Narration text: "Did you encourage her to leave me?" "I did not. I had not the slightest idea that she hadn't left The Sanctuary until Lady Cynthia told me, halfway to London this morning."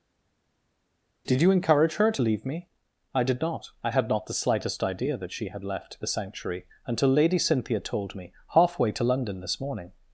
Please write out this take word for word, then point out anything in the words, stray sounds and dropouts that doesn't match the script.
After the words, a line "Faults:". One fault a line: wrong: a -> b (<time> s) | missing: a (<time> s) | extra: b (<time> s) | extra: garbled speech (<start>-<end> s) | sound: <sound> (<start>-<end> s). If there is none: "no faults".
"Did you encourage her to leave me?" "I did not. I had not the slightest idea that she had left The Sanctuary until Lady Cynthia told me, halfway to London this morning."
Faults:
wrong: hadn't -> had (5.5 s)